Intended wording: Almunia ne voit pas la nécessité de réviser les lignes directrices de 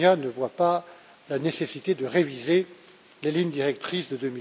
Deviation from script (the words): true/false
false